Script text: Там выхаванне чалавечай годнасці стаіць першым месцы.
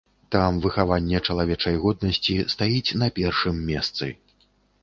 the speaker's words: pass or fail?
fail